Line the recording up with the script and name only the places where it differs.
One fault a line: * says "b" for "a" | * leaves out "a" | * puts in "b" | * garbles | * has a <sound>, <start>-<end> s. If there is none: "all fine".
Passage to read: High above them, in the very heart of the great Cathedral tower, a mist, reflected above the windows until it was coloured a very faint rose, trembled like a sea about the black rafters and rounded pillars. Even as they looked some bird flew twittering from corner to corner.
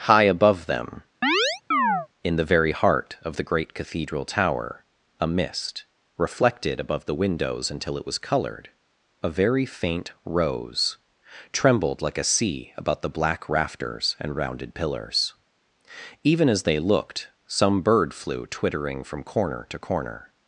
* has a chirp, 1.2-2.1 s